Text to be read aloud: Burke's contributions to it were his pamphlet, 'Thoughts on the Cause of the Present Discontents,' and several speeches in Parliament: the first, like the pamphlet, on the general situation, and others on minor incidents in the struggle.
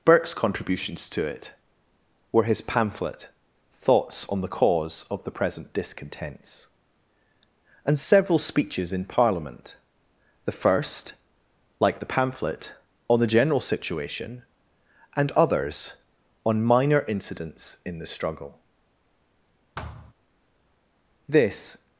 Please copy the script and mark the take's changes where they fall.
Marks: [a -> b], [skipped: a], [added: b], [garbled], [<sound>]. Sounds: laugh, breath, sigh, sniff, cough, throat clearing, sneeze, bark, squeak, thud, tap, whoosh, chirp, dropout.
Burke's contributions to it were his pamphlet, 'Thoughts on the Cause of the Present Discontents,' and several speeches in Parliament: the first, like the pamphlet, on the general situation, and others on minor incidents in the struggle. [thud] [added: This]